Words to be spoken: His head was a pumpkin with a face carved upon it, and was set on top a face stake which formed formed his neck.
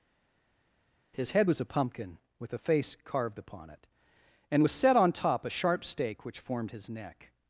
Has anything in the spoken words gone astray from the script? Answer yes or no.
yes